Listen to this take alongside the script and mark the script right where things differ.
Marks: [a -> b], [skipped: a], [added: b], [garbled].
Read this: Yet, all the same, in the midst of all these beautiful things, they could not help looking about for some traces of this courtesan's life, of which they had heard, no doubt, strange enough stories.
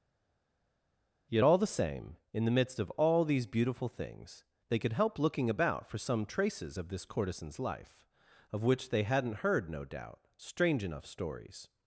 Yet, all the same, in the midst of all these beautiful things, they could [skipped: not] help looking about for some traces of this courtesan's life, of which they [had -> hadn't] heard, no doubt, strange enough stories.